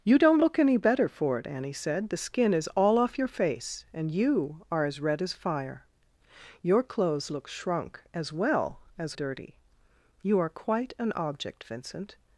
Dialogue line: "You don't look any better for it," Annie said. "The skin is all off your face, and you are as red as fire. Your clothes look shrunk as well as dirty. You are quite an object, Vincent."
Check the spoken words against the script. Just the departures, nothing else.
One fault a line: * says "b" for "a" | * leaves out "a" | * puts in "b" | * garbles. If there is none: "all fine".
all fine